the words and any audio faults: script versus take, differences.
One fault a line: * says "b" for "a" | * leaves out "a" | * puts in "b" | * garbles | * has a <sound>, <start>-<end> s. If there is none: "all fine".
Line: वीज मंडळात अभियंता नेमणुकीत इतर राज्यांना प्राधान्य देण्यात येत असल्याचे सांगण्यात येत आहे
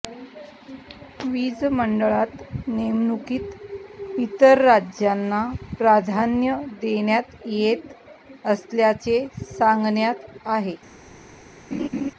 * leaves out "अभियंता"
* leaves out "येत"
* has a laugh, 11.7-12.1 s